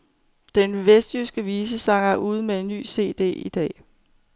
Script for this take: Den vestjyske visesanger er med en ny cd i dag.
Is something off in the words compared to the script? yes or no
yes